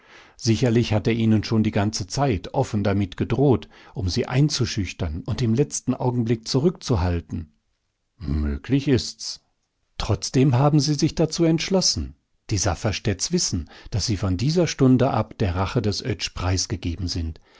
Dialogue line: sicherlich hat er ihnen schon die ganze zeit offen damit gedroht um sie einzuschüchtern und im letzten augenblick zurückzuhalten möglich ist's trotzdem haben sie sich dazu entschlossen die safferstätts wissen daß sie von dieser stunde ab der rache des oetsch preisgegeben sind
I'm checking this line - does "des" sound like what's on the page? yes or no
yes